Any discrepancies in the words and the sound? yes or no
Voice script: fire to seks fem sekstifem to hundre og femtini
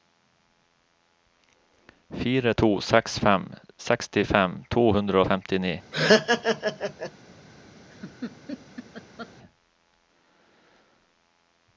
yes